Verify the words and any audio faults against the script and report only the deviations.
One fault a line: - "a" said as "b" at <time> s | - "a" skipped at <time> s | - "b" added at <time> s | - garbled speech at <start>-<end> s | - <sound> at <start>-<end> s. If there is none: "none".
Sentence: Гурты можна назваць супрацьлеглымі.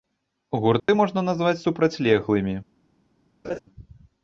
- dropout at 0.8-0.9 s
- laugh at 3.4-3.6 s